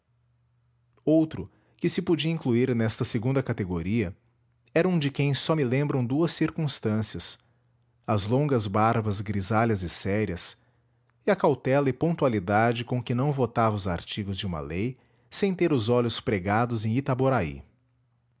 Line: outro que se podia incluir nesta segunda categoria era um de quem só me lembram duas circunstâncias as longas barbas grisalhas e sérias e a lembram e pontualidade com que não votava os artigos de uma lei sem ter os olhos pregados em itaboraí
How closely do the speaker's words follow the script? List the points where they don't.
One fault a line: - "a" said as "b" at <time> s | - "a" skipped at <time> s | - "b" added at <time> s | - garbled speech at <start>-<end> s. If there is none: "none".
- "lembram" said as "cautela" at 11.4 s